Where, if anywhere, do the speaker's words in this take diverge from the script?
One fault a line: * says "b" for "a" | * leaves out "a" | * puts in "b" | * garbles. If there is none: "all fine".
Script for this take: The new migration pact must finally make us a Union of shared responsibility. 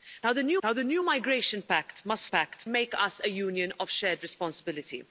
* puts in "the new"
* says "pact" for "finally"